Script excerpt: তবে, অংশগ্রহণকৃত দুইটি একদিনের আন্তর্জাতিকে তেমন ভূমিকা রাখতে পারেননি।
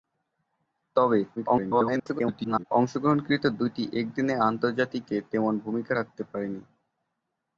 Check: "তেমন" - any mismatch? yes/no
no